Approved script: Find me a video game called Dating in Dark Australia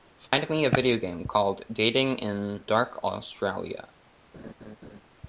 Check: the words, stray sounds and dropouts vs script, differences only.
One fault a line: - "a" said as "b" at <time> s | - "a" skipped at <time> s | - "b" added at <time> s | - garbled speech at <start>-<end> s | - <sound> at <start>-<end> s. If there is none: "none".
- dropout at 0.3-0.3 s
- laugh at 4.3-5.0 s